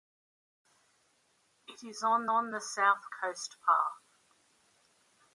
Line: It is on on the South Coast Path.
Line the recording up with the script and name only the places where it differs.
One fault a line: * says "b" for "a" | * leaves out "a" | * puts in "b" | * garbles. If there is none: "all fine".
all fine